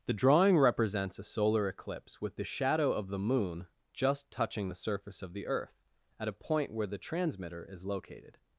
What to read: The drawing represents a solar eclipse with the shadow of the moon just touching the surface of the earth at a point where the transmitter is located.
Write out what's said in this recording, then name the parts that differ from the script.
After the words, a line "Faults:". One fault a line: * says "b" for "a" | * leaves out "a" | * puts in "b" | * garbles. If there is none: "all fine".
The drawing represents a solar eclipse with the shadow of the moon just touching the surface of the earth at a point where the transmitter is located.
Faults:
all fine